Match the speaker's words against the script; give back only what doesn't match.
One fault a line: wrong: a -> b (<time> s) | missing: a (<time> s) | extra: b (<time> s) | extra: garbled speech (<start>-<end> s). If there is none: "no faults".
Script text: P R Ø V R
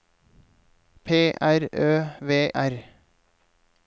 no faults